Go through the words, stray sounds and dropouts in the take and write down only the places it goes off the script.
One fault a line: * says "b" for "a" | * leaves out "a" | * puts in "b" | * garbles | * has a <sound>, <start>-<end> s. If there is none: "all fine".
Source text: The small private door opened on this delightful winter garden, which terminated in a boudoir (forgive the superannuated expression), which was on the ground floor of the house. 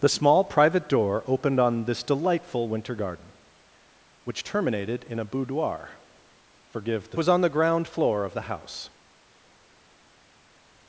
* leaves out "superannuated expression which"